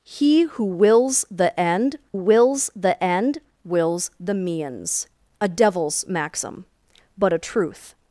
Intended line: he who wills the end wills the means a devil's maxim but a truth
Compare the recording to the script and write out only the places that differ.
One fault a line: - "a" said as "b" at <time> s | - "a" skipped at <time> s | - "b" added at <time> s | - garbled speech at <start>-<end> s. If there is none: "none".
- "end wills the" added at 3.0 s